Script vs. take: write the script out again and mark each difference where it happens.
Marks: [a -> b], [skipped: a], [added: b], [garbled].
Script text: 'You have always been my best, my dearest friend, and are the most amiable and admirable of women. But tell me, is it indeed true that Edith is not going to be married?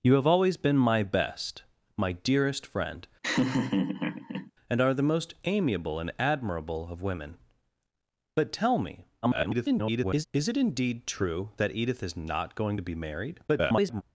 'You have always been my best, my dearest friend, and are the most amiable and admirable of women. But tell me, [garbled] is it indeed true that Edith is not going to be married? [garbled]